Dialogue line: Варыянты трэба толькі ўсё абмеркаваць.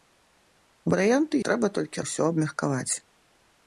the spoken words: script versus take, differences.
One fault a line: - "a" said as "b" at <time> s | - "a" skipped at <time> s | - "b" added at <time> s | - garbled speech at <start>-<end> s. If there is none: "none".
none